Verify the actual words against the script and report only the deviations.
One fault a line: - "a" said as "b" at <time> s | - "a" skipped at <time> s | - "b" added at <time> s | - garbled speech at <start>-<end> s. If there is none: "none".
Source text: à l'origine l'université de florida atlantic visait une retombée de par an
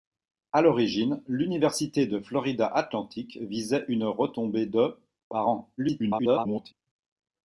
- garbled speech at 5.8-6.7 s